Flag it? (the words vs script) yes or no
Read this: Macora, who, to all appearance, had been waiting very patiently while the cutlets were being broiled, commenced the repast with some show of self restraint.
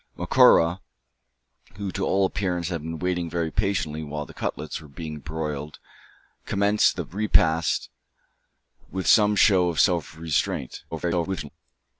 yes